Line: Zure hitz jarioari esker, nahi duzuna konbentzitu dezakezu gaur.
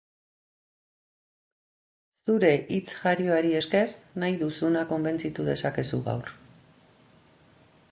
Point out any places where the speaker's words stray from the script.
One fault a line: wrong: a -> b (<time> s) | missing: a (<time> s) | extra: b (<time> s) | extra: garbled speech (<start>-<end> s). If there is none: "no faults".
no faults